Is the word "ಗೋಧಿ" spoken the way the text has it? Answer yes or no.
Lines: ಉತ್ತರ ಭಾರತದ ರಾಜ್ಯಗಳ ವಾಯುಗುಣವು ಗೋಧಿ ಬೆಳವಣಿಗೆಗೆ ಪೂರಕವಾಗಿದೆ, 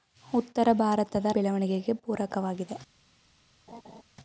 no